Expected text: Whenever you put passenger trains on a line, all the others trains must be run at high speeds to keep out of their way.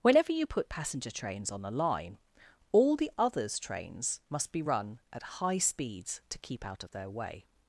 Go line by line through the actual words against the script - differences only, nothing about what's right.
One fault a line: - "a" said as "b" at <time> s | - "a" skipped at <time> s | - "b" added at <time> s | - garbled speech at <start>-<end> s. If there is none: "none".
none